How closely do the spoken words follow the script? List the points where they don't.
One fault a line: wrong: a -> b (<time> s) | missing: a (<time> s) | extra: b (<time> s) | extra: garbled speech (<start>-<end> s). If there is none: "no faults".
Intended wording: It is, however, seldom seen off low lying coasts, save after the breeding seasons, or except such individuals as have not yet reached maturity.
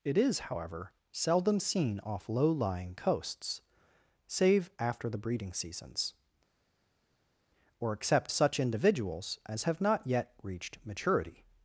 no faults